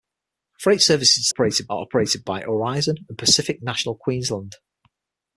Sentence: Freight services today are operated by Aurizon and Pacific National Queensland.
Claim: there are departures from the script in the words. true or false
true